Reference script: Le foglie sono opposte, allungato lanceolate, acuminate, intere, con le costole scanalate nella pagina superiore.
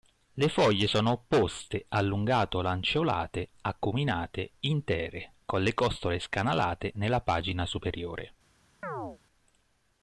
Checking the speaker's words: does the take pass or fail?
pass